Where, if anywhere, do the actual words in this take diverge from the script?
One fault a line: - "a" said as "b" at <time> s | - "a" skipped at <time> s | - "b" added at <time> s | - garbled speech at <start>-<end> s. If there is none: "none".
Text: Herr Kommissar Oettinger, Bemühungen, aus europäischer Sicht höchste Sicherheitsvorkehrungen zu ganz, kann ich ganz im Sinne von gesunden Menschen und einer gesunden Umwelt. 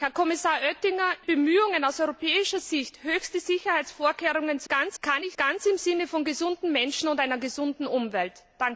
none